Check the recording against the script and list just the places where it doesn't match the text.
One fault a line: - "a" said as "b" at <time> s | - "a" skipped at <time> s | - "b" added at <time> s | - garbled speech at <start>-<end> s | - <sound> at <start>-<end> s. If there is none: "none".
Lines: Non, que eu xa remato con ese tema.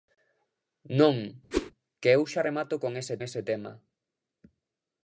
- whoosh at 1.5-1.7 s
- "ese" added at 3.3 s